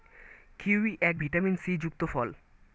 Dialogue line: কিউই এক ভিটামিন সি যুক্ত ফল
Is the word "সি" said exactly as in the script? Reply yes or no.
yes